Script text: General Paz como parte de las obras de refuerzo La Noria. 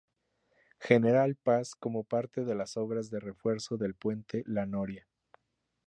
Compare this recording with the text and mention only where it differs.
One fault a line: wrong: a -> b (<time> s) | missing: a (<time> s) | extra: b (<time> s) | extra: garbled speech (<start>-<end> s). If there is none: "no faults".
extra: del Puente (3.8 s)